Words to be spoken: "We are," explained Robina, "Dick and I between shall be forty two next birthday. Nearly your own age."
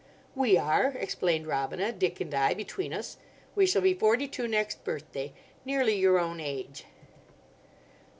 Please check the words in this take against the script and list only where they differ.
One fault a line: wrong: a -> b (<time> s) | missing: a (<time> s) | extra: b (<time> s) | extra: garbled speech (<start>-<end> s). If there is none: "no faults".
extra: us We (2.9 s)